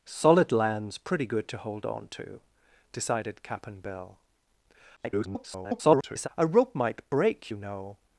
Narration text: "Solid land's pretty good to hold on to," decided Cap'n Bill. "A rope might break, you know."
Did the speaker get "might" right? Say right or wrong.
right